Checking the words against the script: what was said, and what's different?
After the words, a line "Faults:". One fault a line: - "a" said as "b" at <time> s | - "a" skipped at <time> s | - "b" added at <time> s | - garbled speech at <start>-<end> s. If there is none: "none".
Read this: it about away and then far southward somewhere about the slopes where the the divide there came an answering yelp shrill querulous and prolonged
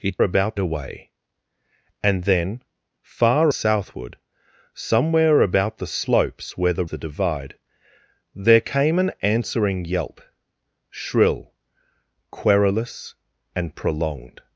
it about away and then far southward somewhere about the slopes where the the divide there came an answering yelp shrill querulous and prolonged
Faults:
none